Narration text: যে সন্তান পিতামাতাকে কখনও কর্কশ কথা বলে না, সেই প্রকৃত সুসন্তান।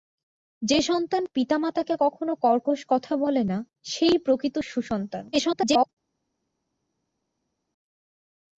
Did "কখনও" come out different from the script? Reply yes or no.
no